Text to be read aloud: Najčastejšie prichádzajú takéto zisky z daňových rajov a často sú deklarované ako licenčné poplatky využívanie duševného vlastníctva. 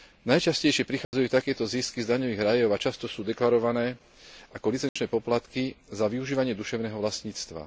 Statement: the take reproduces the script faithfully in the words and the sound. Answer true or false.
false